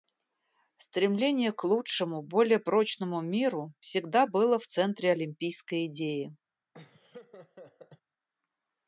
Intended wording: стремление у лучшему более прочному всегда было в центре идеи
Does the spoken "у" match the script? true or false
false